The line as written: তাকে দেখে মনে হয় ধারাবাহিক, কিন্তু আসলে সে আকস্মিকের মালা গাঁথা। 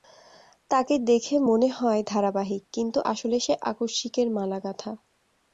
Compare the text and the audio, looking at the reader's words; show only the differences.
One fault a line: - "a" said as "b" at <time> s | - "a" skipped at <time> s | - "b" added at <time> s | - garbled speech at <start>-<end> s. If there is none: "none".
none